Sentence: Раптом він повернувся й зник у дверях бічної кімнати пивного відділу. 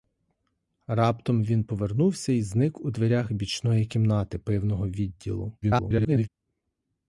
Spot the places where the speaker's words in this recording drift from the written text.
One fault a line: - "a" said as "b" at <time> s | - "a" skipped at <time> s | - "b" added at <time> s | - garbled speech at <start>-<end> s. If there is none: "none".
- garbled speech at 5.6-6.3 s